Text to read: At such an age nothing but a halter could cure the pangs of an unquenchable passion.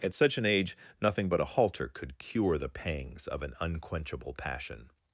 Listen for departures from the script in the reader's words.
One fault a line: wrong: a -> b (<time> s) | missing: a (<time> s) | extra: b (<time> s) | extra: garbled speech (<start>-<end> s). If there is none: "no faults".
no faults